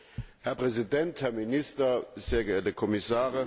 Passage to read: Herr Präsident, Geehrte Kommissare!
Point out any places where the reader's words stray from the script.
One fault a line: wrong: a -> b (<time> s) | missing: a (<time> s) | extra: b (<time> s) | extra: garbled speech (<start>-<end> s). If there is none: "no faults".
extra: Herr Minister sehr (1.2 s)